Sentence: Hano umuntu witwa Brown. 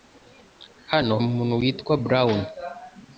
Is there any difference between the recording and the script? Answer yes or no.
no